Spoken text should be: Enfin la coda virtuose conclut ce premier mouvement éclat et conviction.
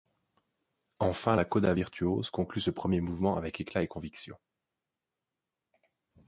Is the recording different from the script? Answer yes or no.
yes